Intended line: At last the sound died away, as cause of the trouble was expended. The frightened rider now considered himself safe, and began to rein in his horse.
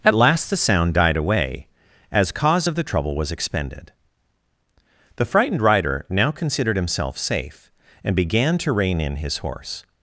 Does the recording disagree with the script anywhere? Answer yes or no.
no